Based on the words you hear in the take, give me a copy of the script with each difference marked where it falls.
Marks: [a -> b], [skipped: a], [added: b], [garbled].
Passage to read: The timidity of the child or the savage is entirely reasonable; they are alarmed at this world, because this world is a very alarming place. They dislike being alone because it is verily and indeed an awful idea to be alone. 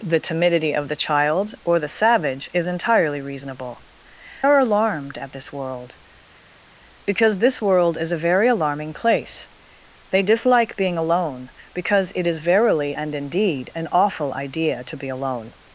The timidity of the child or the savage is entirely reasonable; [skipped: they] are alarmed at this world, because this world is a very alarming place. They dislike being alone because it is verily and indeed an awful idea to be alone.